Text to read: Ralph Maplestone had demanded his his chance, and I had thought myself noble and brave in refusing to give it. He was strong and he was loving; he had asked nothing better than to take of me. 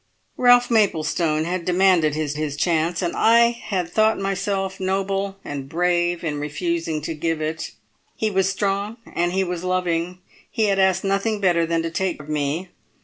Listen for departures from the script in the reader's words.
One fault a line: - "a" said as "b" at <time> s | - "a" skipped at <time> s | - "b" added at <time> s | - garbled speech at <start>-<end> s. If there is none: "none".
none